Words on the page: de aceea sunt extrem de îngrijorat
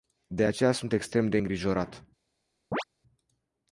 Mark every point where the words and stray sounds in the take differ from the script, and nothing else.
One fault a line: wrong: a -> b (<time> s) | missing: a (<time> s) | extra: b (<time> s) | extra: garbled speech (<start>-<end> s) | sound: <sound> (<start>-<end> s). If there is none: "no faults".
sound: chirp (2.7-2.8 s)